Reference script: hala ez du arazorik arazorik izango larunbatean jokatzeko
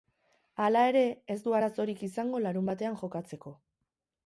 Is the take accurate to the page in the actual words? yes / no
no